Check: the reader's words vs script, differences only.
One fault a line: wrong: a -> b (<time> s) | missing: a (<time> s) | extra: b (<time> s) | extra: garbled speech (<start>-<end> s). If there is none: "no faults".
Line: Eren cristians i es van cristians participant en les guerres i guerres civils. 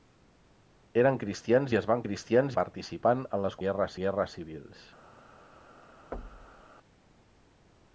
no faults